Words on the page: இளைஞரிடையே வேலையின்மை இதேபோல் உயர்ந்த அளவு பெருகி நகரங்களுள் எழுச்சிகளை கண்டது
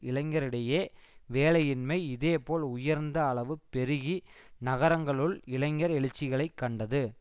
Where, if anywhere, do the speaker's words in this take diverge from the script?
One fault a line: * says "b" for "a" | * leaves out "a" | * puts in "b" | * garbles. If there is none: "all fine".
* puts in "இளைஞர்"